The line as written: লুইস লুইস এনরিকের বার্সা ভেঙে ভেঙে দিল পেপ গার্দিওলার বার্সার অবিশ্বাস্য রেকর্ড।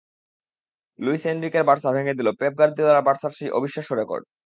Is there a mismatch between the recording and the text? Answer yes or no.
yes